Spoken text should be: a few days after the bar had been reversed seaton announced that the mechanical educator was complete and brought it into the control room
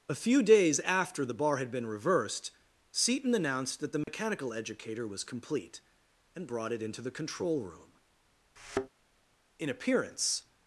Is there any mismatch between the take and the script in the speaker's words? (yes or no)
yes